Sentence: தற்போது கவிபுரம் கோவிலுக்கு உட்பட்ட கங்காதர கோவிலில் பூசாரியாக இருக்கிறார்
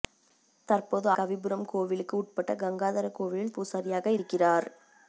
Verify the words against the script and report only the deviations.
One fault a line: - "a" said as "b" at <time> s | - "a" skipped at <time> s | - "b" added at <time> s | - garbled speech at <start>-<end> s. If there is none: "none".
none